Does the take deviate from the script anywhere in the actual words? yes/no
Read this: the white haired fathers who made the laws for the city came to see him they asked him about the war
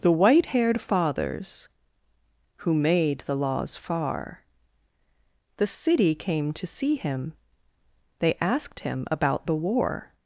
yes